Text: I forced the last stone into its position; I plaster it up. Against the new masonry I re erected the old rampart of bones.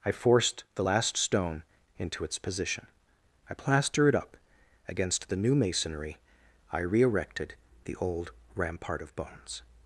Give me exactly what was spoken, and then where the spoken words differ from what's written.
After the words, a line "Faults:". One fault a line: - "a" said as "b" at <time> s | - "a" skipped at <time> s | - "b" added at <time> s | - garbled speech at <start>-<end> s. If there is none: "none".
I forced the last stone into its position; I plaster it up. Against the new masonry I re erected the old rampart of bones.
Faults:
none